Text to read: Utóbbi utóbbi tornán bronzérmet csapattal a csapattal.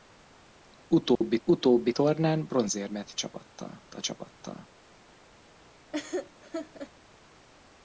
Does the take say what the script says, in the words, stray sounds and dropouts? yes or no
no